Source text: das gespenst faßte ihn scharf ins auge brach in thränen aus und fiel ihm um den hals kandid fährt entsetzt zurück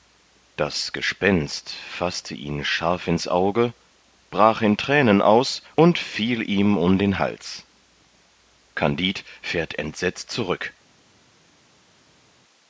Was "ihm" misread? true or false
false